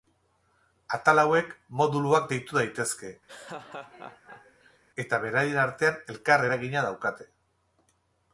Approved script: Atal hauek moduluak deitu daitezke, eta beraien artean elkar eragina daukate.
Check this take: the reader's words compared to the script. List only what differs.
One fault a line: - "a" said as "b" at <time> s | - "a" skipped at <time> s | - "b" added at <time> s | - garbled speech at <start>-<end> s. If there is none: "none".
none